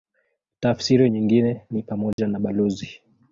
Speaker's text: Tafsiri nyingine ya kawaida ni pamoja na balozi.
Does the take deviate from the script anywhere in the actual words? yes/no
yes